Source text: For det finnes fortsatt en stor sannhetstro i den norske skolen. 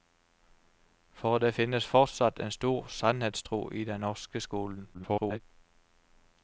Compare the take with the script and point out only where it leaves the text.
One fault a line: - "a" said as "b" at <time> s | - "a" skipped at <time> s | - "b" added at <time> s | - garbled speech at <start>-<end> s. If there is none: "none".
- garbled speech at 4.9-5.4 s